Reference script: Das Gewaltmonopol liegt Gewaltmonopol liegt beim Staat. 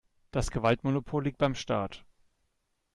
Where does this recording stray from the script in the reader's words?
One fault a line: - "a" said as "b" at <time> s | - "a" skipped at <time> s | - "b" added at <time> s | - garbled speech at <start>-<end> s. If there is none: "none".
- "Gewaltmonopol liegt" skipped at 1.4 s